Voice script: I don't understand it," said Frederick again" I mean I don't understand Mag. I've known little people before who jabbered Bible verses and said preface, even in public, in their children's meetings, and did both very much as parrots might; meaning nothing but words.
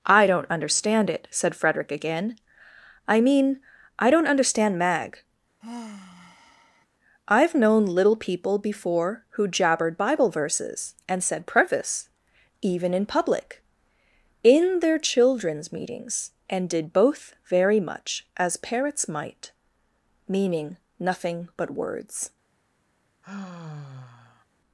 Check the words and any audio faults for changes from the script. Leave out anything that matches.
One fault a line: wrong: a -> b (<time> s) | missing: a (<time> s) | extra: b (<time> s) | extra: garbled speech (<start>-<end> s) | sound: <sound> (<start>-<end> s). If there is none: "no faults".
sound: sigh (5.6-6.9 s)
sound: sigh (23.2-24.4 s)